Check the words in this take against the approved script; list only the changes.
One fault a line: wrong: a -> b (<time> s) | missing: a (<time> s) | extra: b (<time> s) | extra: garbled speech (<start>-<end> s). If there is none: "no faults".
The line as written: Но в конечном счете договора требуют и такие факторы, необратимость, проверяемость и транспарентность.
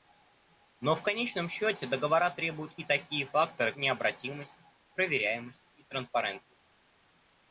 no faults